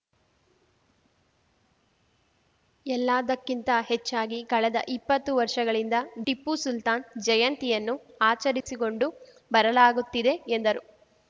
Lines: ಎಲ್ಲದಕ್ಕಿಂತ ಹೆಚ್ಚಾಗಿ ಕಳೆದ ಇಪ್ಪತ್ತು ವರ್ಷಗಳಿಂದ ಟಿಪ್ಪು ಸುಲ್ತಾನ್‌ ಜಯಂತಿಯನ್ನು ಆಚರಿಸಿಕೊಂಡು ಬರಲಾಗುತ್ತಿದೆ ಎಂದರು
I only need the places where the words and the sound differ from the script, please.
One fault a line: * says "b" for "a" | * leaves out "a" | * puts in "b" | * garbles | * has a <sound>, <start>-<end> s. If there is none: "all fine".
* has a dropout, 8.6-8.7 s